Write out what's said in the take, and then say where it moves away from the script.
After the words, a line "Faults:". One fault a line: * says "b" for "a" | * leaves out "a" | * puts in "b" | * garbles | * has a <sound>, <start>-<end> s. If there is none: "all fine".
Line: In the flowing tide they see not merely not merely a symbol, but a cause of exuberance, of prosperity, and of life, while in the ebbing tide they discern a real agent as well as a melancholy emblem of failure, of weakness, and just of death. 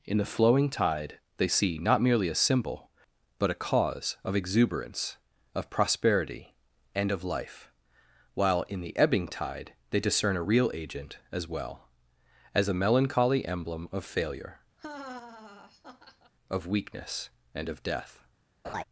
In the flowing tide they see not merely a symbol, but a cause of exuberance, of prosperity, and of life, while in the ebbing tide they discern a real agent as well as a melancholy emblem of failure, of weakness, and of death.
Faults:
* leaves out "not merely"
* has a laugh, 14.8-16.3 s
* leaves out "just"
* has a laugh, 18.6-18.8 s